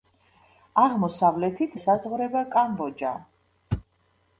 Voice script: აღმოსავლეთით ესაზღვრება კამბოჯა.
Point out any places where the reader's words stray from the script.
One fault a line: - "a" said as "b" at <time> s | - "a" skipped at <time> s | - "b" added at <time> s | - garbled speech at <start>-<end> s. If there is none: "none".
none